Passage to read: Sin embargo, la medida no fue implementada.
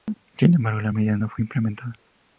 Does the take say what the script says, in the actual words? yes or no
yes